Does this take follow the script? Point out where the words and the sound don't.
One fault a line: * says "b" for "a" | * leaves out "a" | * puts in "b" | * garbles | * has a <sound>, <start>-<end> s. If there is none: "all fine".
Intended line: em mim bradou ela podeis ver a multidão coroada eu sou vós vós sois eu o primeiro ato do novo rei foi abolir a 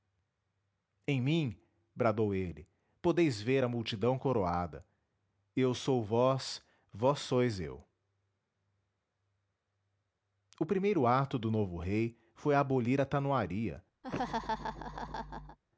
* says "ele" for "ela"
* has a laugh, 14.0-15.6 s